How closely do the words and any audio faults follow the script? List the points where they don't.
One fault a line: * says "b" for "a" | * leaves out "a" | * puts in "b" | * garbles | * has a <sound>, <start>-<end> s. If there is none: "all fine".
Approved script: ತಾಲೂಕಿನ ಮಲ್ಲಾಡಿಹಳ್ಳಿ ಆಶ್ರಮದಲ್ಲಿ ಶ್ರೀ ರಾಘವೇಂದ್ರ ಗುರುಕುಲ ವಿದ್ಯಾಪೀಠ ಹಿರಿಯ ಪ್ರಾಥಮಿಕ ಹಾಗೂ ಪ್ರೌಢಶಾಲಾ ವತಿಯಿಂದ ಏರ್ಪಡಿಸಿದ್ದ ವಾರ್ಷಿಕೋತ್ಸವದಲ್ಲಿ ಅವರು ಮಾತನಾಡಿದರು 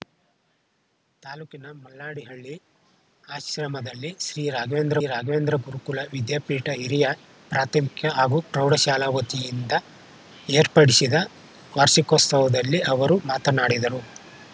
* puts in "ರಾಘವೇಂದ್ರ"